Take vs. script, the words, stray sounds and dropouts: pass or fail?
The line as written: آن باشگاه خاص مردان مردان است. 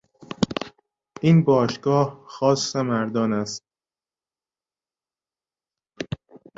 fail